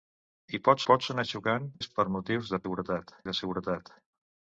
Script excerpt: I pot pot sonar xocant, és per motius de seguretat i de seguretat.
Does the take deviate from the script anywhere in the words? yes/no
no